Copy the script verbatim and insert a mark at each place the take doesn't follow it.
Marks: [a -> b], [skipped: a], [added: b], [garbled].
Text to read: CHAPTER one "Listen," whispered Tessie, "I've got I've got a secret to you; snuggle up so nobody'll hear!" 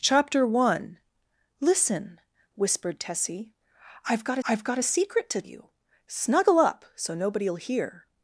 CHAPTER one "Listen," whispered Tessie, "I've got I've got a secret to you; snuggle up so nobody'll hear!"